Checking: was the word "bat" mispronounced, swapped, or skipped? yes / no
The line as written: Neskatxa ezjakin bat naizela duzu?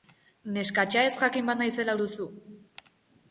no